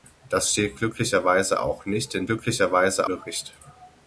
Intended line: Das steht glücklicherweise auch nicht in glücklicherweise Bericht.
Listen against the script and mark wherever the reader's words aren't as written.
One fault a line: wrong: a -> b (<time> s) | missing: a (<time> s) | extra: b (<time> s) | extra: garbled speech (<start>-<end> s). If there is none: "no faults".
no faults